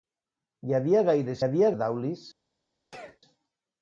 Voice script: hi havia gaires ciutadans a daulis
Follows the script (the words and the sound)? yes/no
no